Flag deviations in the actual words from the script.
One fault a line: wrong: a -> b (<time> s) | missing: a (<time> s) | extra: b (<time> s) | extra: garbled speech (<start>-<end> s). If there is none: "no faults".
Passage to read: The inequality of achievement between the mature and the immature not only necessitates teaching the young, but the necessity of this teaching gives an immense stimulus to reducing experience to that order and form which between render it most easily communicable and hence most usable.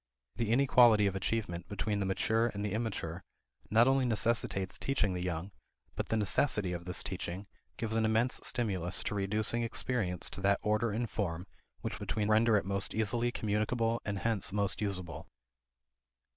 no faults